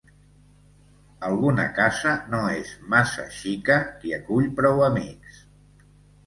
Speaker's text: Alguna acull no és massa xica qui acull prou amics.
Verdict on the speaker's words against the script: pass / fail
fail